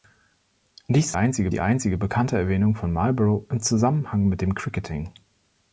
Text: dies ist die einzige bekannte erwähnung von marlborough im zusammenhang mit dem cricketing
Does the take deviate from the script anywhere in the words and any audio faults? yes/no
yes